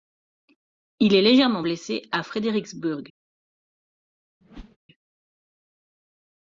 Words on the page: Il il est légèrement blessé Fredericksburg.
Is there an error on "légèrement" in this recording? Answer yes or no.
no